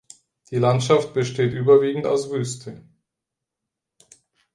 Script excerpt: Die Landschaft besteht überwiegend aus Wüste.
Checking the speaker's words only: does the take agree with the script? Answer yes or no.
yes